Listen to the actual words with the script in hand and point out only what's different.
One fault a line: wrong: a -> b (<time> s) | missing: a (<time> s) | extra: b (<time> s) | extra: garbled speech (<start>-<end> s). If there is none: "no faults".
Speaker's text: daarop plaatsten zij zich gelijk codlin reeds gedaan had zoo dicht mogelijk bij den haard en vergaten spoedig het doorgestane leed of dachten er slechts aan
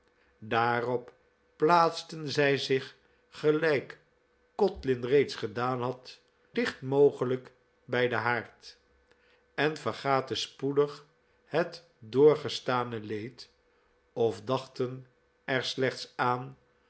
missing: zoo (6.2 s)